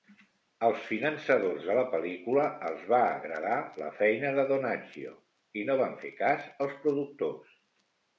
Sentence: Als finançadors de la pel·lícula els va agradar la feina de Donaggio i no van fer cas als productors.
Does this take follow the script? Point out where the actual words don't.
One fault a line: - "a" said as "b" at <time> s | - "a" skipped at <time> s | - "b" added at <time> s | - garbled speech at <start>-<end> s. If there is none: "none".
none